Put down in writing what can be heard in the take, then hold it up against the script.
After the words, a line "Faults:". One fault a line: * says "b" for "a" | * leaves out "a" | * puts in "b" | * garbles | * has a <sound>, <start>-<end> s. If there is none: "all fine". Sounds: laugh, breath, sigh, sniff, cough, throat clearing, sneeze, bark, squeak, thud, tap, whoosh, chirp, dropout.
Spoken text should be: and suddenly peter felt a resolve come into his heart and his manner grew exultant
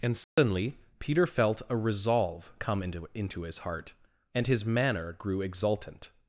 and suddenly peter felt a resolve come into into his heart and his manner grew exultant
Faults:
* has a dropout, 0.2-0.4 s
* puts in "into"